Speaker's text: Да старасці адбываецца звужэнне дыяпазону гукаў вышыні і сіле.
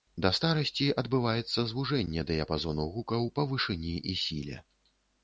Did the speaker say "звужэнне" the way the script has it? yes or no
yes